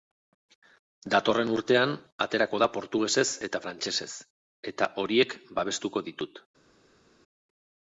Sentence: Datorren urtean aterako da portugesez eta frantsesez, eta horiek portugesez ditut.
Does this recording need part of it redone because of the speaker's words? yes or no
yes